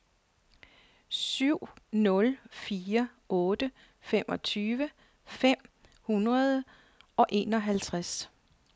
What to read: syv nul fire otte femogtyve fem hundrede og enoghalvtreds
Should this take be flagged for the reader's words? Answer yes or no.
no